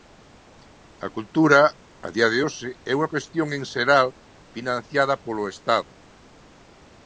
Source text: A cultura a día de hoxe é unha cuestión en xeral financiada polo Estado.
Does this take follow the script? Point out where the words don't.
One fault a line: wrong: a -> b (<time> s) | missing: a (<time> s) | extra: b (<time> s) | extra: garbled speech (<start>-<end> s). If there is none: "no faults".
no faults